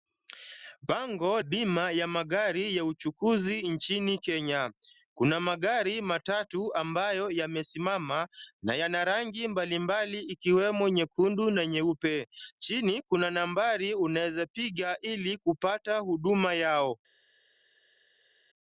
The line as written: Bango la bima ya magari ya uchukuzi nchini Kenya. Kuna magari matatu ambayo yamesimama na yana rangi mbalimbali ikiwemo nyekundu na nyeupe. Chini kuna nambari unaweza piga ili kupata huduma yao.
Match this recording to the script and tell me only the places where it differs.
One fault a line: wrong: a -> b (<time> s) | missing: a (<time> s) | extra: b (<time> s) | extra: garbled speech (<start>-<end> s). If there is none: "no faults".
missing: la (1.4 s)